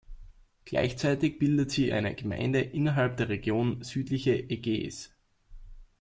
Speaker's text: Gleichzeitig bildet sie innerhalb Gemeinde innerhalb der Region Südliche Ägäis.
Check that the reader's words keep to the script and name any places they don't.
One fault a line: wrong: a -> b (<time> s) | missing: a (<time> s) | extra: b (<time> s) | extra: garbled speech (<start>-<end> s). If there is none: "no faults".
wrong: innerhalb -> eine (1.9 s)